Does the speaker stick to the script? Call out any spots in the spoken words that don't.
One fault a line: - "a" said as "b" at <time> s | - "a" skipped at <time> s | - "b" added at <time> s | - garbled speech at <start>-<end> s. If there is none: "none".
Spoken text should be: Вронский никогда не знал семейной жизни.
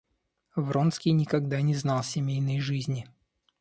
none